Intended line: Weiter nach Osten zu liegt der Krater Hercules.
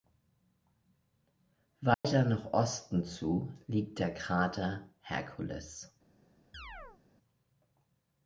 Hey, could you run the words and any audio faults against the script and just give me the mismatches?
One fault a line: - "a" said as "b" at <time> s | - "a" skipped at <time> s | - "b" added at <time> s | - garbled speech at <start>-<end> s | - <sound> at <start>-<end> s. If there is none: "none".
- dropout at 1.9-2.0 s
- chirp at 6.5-7.0 s